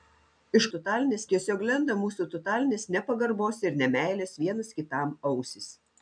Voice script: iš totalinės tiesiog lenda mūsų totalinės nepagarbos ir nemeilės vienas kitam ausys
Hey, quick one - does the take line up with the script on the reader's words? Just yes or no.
yes